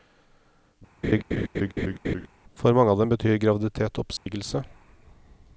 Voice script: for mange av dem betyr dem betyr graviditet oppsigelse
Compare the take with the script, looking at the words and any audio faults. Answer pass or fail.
fail